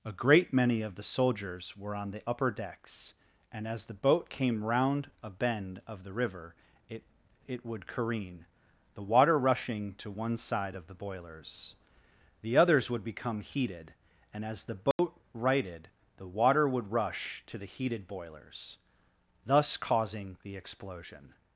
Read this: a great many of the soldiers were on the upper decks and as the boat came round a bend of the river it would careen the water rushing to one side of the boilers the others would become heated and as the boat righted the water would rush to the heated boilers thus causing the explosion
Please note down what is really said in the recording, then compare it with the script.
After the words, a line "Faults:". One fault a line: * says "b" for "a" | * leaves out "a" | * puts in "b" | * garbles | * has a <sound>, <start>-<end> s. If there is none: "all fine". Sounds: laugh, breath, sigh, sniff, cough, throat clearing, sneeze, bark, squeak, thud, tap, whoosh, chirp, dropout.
a great many of the soldiers were on the upper decks and as the boat came round a bend of the river it it would careen the water rushing to one side of the boilers the others would become heated and as the boat righted the water would rush to the heated boilers thus causing the explosion
Faults:
* puts in "it"
* has a dropout, 14.9-15.0 s